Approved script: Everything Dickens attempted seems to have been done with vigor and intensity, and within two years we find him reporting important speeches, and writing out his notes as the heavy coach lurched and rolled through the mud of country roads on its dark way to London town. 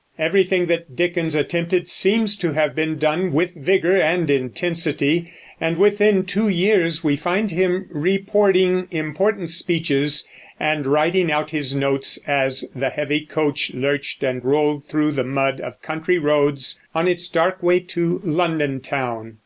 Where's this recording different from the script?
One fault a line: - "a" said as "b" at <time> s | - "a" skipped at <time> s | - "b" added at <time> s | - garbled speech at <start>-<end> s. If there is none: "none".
- "that" added at 0.7 s